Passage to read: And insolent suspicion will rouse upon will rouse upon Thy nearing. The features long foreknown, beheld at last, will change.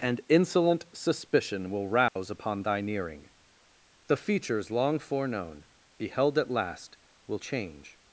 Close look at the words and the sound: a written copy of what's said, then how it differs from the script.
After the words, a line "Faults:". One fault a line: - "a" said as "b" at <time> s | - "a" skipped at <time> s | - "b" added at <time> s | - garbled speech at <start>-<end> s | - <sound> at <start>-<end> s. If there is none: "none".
And insolent suspicion will rouse upon Thy nearing. The features long foreknown, beheld at last, will change.
Faults:
- dropout at 2.1-2.2 s
- "will rouse upon" skipped at 2.6 s